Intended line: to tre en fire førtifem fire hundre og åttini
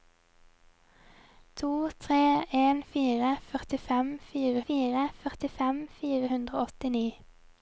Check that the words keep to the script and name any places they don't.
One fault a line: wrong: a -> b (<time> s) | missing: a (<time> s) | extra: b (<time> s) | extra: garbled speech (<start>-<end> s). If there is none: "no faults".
extra: fire førtifem fire (4.7 s)